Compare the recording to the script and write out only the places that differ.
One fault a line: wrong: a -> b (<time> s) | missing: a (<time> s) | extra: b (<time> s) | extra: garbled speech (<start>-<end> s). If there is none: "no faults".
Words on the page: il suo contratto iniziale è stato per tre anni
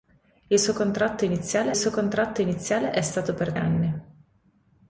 extra: suo contratto iniziale (1.7 s)
missing: tre (3.5 s)